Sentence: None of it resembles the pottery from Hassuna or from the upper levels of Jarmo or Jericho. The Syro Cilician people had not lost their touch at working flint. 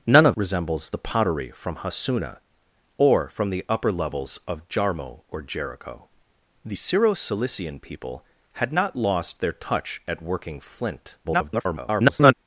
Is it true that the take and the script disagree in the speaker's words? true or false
true